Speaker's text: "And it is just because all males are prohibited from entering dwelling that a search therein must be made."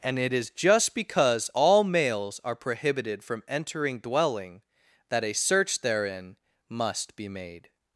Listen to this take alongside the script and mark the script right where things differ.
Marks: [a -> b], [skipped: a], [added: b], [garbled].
"And it is just because all males are prohibited from entering dwelling that a search therein must be made."